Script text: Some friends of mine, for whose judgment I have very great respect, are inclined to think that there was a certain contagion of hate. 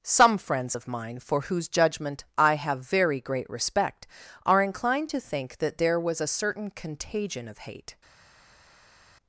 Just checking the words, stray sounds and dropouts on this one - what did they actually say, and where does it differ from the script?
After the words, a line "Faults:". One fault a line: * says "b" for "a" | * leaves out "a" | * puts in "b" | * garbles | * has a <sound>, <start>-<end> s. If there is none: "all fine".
Some friends of mine, for whose judgment I have very great respect, are inclined to think that there was a certain contagion of hate.
Faults:
all fine